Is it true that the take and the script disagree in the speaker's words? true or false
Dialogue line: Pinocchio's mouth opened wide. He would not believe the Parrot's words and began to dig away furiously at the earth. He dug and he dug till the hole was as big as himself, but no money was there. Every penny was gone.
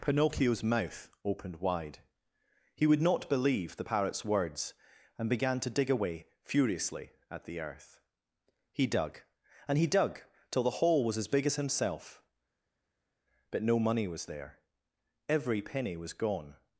false